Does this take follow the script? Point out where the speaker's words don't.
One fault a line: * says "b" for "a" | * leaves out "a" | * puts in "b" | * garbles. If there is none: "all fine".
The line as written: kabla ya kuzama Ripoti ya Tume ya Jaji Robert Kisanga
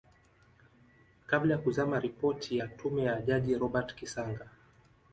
all fine